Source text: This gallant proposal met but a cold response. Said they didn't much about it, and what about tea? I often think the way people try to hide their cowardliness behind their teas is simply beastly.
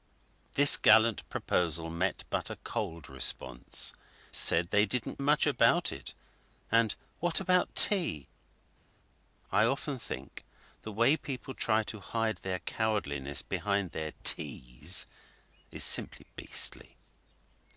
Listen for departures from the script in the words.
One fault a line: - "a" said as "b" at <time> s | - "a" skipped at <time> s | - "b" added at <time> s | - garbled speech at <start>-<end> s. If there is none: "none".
none